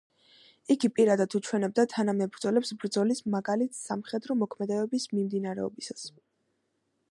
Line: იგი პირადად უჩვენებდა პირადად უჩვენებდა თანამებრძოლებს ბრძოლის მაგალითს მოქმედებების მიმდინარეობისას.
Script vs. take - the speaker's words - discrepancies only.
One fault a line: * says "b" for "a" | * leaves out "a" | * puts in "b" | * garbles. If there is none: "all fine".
* leaves out "პირადად უჩვენებდა"
* puts in "სამხედრო"